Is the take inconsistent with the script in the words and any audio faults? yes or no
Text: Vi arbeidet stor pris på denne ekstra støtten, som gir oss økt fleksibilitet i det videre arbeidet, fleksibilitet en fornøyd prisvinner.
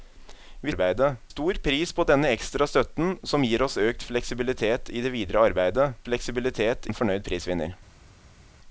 no